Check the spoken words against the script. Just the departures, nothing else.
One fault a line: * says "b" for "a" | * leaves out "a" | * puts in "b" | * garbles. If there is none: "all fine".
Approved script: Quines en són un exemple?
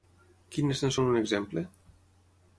all fine